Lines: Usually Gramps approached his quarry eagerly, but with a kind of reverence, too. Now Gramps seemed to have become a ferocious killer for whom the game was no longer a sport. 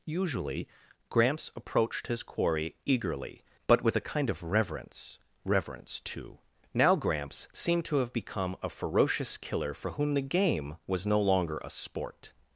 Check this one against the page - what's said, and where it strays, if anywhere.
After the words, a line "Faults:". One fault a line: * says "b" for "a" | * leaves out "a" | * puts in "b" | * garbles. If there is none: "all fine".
Usually Gramps approached his quarry eagerly, but with a kind of reverence reverence, too. Now Gramps seemed to have become a ferocious killer for whom the game was no longer a sport.
Faults:
* puts in "reverence"